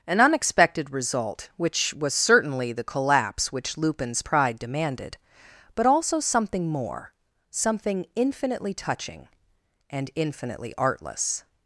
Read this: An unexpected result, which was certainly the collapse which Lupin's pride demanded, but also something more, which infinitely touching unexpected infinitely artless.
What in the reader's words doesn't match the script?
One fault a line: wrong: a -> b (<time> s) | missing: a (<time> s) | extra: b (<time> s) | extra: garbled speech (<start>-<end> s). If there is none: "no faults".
wrong: which -> something (7.5 s)
wrong: unexpected -> and (9.9 s)